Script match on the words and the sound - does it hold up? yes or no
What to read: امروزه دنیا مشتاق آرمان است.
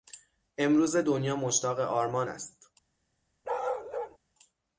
no